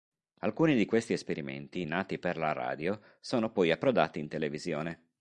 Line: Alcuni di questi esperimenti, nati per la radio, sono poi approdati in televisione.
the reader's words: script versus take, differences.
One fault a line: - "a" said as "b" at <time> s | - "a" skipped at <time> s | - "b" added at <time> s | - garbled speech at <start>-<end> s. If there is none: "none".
none